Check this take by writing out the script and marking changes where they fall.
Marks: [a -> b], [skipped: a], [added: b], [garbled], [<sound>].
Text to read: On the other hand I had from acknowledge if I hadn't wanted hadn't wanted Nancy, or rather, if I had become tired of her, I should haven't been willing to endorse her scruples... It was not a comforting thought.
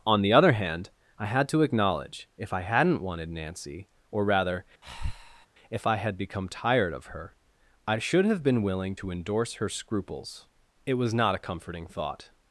On the other hand I had [from -> to] acknowledge if I hadn't wanted [skipped: hadn't wanted] Nancy, or rather, [breath] if I had become tired of her, I should [haven't -> have] been willing to endorse her scruples... It was not a comforting thought.